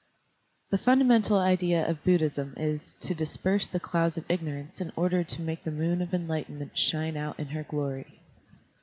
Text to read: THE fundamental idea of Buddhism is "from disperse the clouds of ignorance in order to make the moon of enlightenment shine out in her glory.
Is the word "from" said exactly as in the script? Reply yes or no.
no